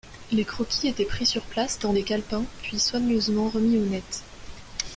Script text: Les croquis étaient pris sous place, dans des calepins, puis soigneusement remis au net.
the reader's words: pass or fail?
fail